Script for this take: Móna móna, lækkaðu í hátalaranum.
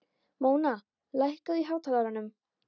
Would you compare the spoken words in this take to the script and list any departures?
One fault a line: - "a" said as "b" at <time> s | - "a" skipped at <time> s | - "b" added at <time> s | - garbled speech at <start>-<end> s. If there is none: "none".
- "móna" skipped at 0.7 s